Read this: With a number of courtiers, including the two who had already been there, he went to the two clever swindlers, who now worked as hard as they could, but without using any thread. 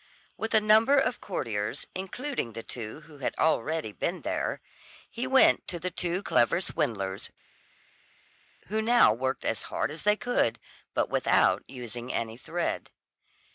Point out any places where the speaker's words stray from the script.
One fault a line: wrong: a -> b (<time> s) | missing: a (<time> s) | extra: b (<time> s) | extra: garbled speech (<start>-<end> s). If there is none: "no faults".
no faults